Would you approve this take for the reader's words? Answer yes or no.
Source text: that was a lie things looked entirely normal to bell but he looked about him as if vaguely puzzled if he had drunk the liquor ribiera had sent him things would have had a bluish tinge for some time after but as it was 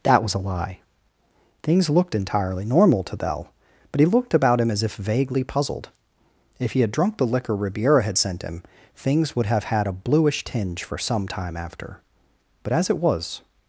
yes